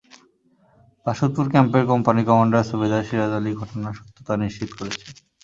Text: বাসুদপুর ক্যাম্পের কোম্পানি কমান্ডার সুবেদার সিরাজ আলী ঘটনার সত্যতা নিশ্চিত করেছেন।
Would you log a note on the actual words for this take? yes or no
no